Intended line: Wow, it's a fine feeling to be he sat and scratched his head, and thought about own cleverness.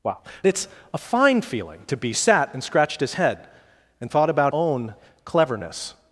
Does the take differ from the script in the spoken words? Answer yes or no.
no